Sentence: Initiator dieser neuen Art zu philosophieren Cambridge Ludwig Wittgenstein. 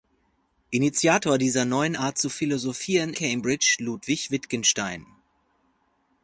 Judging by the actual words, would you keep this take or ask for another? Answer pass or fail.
pass